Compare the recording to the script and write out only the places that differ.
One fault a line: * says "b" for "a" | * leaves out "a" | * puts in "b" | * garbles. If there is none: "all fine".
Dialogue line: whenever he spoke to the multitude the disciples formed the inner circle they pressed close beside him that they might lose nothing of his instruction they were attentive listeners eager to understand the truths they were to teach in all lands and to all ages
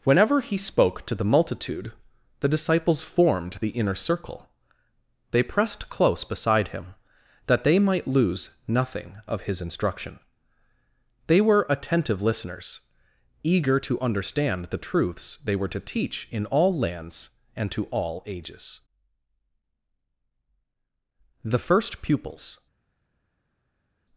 * puts in "the first pupils"